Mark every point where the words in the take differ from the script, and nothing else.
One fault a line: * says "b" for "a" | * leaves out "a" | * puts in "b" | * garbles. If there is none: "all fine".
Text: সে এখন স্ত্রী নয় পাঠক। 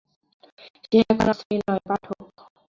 all fine